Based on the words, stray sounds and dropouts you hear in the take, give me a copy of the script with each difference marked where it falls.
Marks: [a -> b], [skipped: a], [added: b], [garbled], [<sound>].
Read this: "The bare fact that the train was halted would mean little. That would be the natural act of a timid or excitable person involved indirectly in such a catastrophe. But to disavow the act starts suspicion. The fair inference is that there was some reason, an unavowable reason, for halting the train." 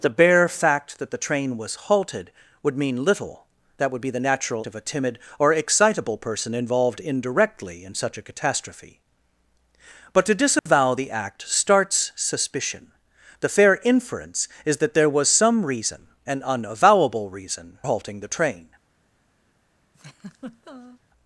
"The bare fact that the train was halted would mean little. That would be the natural [skipped: act] of a timid or excitable person involved indirectly in such a catastrophe. But to disavow [dropout] the act starts suspicion. The fair inference is that there was some reason, an unavowable reason, [skipped: for] halting the train." [laugh]